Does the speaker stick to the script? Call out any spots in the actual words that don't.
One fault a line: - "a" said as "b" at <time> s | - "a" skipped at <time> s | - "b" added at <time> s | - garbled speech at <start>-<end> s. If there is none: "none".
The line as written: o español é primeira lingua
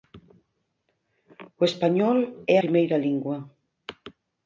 none